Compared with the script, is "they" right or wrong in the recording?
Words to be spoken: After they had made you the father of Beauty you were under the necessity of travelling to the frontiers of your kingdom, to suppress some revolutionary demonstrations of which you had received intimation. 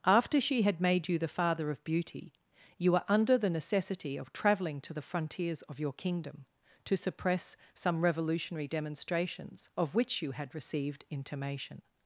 wrong